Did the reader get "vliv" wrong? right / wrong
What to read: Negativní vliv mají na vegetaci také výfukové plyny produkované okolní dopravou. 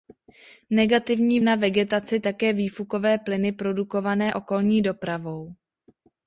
wrong